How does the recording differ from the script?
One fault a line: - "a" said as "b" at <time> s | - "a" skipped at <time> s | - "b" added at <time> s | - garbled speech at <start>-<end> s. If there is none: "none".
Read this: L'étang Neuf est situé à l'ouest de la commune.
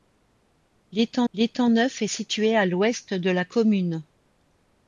- "l'étang" added at 1.3 s